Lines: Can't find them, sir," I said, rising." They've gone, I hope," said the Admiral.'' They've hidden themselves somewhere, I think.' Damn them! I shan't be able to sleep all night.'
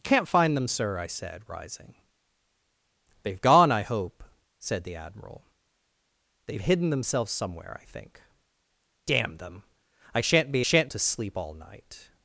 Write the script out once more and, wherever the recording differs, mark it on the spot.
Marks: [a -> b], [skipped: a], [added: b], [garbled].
Can't find them, sir," I said, rising." They've gone, I hope," said the Admiral.'' They've hidden themselves somewhere, I think.' Damn them! I shan't be [able -> shan't] to sleep all night.'